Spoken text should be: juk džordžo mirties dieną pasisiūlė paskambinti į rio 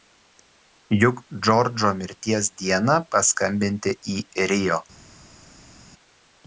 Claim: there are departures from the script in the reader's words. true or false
true